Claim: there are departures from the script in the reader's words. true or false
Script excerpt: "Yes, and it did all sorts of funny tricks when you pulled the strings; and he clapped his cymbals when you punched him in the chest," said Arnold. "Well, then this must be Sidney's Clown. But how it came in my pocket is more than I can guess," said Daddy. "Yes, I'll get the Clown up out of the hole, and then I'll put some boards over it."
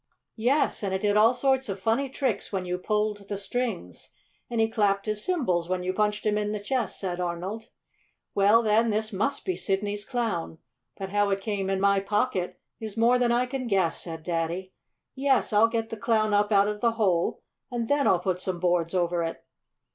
false